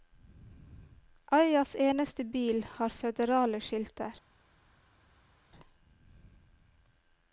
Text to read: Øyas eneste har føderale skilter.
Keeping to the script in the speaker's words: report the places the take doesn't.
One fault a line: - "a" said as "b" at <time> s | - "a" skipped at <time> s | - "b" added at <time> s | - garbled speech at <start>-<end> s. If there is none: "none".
- "bil" added at 2.2 s